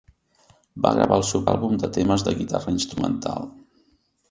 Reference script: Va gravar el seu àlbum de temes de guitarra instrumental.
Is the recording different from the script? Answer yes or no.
no